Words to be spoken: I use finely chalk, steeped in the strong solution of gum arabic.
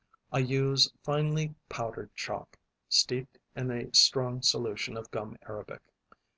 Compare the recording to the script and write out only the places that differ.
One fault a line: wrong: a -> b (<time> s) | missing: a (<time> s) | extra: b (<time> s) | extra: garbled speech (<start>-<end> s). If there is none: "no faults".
extra: powdered (1.7 s)
wrong: the -> a (3.7 s)